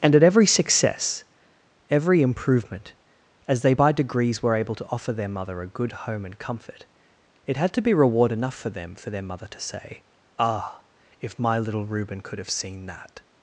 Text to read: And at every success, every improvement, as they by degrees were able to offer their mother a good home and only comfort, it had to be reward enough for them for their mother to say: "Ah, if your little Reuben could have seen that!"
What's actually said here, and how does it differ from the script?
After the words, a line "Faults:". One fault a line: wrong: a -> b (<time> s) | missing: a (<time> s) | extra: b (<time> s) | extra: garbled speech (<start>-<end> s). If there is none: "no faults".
And at every success, every improvement, as they by degrees were able to offer their mother a good home and comfort, it had to be reward enough for them for their mother to say: "Ah, if my little Reuben could have seen that!"
Faults:
missing: only (6.4 s)
wrong: your -> my (11.4 s)